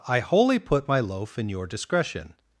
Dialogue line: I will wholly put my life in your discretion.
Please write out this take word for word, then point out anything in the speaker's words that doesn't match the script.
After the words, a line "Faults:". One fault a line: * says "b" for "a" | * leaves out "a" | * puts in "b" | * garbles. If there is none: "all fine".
I wholly put my loaf in your discretion.
Faults:
* leaves out "will"
* says "loaf" for "life"